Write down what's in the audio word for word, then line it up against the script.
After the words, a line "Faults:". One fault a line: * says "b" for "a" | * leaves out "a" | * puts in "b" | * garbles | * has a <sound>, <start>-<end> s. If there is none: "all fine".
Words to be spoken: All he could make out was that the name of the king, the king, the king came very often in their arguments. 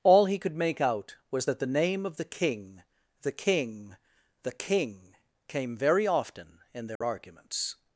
All he could make out was that the name of the king, the king, the king came very often in their arguments.
Faults:
* has a dropout, 7.0-7.0 s